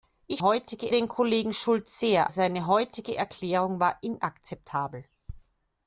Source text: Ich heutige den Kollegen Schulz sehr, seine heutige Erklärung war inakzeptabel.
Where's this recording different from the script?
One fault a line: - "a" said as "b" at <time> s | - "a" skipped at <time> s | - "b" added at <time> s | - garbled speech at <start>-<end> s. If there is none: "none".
none